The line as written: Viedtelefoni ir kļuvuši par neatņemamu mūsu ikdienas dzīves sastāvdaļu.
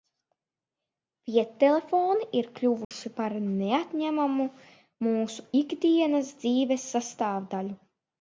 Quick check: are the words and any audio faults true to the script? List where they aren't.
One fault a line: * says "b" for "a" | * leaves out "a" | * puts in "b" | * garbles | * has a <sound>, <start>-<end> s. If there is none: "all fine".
* has a dropout, 2.8-2.9 s